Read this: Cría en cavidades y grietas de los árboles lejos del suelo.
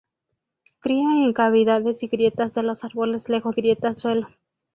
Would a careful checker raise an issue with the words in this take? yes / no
yes